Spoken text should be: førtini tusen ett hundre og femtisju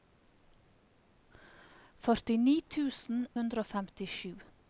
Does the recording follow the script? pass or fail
fail